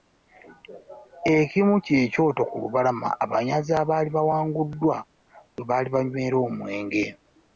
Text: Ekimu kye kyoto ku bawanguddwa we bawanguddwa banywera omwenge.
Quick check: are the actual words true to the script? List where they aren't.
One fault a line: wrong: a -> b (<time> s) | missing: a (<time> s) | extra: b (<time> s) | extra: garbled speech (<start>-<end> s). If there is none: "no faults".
extra: lubalama abanyazi abaali (2.6 s)
wrong: bawanguddwa -> baali (5.7 s)